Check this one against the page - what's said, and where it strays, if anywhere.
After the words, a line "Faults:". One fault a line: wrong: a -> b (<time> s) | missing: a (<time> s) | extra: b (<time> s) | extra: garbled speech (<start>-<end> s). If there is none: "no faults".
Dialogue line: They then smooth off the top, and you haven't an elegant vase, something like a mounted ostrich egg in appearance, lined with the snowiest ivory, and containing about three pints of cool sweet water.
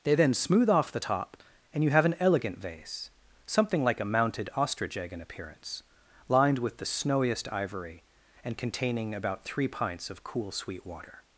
They then smooth off the top, and you have an elegant vase, something like a mounted ostrich egg in appearance, lined with the snowiest ivory, and containing about three pints of cool sweet water.
Faults:
wrong: haven't -> have (1.9 s)